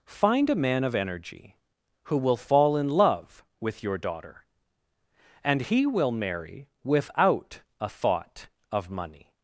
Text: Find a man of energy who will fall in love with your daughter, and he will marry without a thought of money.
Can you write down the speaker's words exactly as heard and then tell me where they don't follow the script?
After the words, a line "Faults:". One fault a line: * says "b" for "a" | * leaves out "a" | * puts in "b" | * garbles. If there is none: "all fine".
Find a man of energy who will fall in love with your daughter, and he will marry without a thought of money.
Faults:
all fine